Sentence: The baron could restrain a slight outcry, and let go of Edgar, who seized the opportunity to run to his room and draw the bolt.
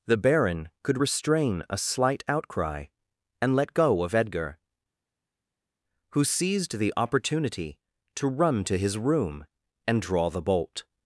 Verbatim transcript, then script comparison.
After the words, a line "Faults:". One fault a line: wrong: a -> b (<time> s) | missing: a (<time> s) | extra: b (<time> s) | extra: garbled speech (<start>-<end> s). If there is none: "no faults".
The baron could restrain a slight outcry, and let go of Edgar, who seized the opportunity to run to his room and draw the bolt.
Faults:
no faults